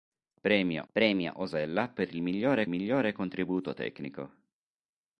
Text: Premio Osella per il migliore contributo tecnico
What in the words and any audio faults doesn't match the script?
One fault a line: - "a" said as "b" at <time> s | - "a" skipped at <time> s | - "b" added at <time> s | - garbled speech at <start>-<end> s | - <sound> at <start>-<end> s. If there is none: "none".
- "premio" added at 0.9 s
- "migliore" added at 2.7 s